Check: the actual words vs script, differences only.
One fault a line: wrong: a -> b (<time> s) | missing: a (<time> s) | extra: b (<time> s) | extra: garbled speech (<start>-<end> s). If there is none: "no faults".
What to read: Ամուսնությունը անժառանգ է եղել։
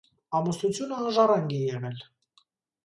no faults